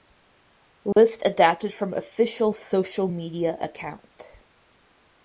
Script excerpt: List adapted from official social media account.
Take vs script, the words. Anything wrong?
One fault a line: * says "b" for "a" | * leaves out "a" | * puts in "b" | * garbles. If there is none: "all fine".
all fine